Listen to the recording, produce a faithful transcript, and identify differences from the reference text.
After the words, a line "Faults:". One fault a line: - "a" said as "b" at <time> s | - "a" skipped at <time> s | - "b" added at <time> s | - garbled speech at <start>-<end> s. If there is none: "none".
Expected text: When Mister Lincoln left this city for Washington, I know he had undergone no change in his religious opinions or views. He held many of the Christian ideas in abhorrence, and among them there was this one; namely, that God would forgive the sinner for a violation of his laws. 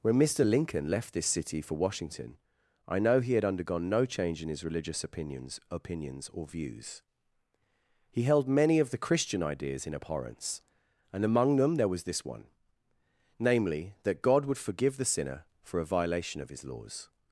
When Mister Lincoln left this city for Washington, I know he had undergone no change in his religious opinions opinions or views. He held many of the Christian ideas in abhorrence, and among them there was this one; namely, that God would forgive the sinner for a violation of his laws.
Faults:
- "opinions" added at 5.7 s